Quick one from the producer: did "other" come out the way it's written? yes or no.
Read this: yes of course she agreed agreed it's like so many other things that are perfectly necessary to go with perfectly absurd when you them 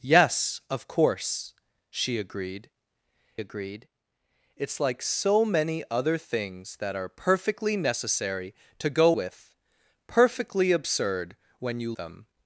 yes